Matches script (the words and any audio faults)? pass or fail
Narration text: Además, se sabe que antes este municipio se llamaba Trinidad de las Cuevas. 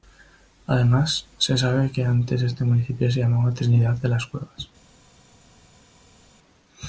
pass